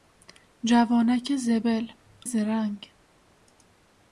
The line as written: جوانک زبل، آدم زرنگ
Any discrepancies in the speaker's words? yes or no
yes